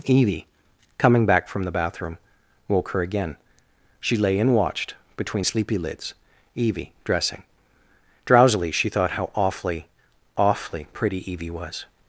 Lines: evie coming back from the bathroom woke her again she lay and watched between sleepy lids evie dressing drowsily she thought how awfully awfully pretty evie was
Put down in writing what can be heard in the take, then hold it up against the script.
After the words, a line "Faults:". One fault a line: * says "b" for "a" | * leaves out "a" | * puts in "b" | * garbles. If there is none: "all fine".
evie coming back from the bathroom woke her again she lay and watched between sleepy lids evie dressing drowsily she thought how awfully awfully pretty evie was
Faults:
all fine